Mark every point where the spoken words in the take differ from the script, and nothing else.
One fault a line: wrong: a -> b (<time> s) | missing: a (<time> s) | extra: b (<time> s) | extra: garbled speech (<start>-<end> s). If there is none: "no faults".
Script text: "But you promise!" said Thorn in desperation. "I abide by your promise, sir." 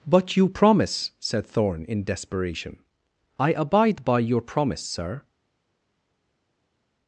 no faults